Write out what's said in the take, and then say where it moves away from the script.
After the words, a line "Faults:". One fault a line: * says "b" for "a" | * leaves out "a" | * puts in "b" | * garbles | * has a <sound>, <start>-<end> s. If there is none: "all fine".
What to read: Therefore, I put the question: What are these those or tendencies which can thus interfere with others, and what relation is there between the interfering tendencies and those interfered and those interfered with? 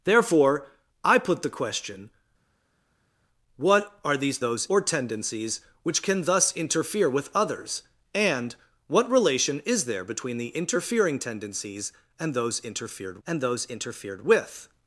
Therefore, I put the question: What are these those or tendencies which can thus interfere with others, and what relation is there between the interfering tendencies and those interfered and those interfered with?
Faults:
all fine